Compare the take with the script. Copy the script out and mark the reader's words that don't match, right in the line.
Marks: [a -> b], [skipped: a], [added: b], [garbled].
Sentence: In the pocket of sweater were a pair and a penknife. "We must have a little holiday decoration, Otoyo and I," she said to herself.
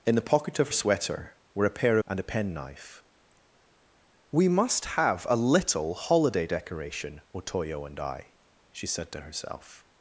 In the pocket of sweater were a pair and a penknife. "We must have a little holiday decoration, Otoyo and I," she said to herself.